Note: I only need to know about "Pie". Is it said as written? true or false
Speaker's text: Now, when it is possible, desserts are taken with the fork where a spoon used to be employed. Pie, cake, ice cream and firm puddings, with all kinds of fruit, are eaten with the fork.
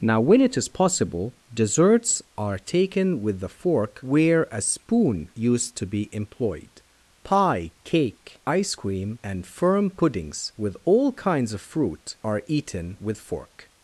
true